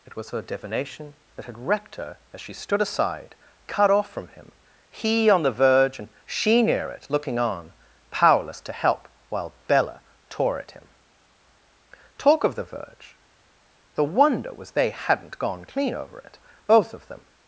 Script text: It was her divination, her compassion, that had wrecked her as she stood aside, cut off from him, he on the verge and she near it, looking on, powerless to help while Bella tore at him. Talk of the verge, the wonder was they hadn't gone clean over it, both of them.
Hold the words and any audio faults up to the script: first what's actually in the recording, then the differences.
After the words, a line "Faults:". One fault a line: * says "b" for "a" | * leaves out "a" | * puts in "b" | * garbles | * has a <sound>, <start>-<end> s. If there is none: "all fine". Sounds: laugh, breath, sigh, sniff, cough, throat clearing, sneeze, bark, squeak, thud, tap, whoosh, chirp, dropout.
It was her divination, that had wrecked her as she stood aside, cut off from him, he on the verge and she near it, looking on, powerless to help while Bella tore at him. Talk of the verge, the wonder was they hadn't gone clean over it, both of them.
Faults:
* leaves out "her compassion"